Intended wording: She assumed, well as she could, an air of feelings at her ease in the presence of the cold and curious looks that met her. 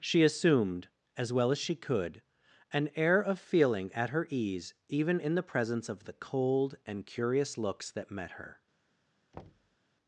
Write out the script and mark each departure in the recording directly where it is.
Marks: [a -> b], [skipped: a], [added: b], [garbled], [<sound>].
She assumed, [added: as] well as she could, an air of [feelings -> feeling] at her ease [added: even] in the presence of the cold and curious looks that met her. [thud]